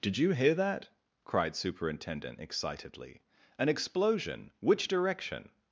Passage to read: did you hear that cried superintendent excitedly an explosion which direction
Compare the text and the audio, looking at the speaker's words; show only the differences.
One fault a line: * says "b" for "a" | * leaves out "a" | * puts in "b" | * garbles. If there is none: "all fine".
all fine